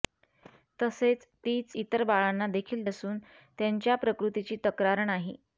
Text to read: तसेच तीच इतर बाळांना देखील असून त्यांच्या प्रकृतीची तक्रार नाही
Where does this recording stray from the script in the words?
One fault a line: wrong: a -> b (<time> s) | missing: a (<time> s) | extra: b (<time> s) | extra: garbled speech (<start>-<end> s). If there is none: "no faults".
no faults